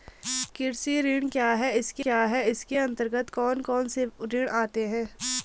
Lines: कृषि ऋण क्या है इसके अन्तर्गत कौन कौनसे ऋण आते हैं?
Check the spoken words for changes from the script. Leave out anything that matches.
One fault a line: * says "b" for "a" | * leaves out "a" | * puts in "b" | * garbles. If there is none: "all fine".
* puts in "क्या है इसके"